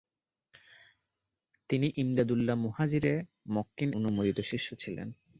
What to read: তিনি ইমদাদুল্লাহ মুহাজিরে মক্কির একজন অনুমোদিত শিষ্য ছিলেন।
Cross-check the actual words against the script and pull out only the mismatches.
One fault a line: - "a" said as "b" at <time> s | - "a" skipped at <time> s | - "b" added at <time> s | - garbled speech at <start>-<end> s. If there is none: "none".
- "একজন" skipped at 3.9 s